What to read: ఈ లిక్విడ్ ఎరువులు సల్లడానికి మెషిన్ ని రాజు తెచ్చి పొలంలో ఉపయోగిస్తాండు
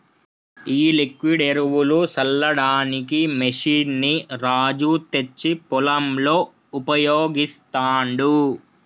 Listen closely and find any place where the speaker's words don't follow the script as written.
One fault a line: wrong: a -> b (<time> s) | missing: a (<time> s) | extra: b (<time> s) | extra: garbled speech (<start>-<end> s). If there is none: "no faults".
no faults